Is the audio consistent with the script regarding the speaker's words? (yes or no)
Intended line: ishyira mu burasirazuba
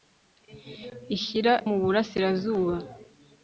yes